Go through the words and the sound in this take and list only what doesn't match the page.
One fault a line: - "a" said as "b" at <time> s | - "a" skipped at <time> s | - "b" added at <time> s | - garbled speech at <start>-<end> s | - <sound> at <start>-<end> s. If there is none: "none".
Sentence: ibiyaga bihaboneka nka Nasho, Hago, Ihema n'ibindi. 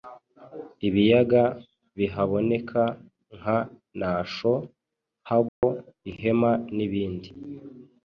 - dropout at 5.5-5.6 s